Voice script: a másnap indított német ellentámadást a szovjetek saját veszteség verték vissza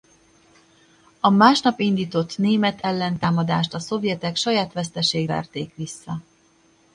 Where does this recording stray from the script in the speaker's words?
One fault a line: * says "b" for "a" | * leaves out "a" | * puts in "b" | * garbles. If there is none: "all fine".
all fine